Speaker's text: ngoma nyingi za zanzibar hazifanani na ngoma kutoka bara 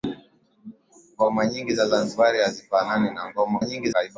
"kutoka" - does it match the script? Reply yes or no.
no